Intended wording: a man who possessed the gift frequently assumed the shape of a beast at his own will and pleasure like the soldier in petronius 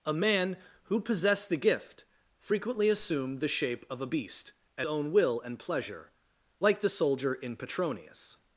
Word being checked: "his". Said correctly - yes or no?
no